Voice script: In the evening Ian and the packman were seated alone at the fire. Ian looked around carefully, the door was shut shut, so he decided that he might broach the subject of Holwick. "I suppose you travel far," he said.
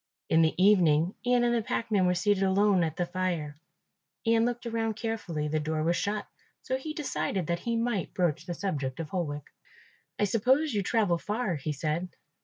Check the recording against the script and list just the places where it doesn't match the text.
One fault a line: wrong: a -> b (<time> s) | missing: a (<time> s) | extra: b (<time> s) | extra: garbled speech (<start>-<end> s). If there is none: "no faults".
missing: shut (6.2 s)